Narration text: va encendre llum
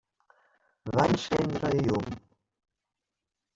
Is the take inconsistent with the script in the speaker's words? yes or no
yes